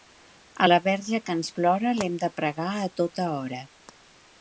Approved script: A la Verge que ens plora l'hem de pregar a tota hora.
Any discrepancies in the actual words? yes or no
no